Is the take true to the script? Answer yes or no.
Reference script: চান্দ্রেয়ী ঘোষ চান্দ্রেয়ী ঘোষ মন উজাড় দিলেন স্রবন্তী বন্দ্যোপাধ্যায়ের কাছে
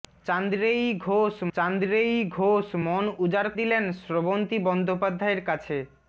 yes